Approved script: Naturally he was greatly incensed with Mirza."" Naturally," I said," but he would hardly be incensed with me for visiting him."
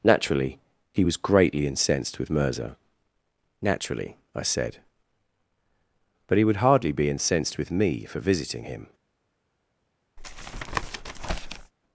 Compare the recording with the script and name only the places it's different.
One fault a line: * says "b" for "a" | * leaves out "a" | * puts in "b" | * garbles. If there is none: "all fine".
all fine